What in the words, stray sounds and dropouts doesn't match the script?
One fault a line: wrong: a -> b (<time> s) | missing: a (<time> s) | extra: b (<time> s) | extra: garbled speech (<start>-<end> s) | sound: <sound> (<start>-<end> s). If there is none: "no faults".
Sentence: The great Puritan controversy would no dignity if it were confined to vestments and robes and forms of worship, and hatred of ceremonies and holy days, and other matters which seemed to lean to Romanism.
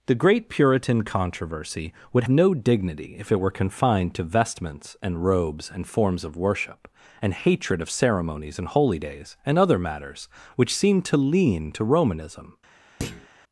sound: thud (13.0-13.3 s)